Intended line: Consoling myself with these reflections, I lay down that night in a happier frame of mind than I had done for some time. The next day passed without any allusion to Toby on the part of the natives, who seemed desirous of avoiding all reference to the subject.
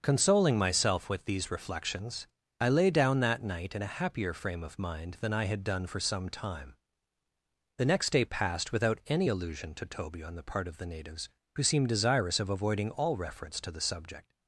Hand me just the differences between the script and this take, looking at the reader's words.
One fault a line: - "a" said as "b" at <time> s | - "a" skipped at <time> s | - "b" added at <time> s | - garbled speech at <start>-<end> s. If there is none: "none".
none